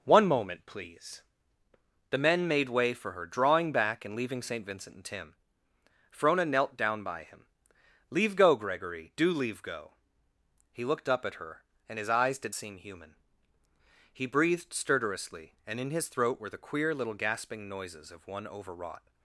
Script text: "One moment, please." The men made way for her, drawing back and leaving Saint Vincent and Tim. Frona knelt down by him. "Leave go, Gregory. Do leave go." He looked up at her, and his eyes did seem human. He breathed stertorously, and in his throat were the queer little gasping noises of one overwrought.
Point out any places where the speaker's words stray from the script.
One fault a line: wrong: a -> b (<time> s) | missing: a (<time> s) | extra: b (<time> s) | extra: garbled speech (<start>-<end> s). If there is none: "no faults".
no faults